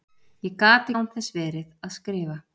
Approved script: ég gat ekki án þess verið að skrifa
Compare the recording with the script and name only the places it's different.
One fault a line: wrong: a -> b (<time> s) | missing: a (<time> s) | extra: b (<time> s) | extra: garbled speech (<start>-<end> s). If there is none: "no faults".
missing: ekki (0.9 s)